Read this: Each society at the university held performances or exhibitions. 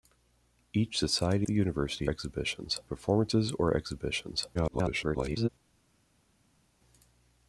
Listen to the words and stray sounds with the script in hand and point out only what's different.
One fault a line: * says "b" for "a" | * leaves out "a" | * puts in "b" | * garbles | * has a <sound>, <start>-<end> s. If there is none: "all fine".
* leaves out "at"
* says "exhibitions" for "held"
* garbles